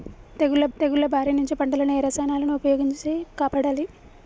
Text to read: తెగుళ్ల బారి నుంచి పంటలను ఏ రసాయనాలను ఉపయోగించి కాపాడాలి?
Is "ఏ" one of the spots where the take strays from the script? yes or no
no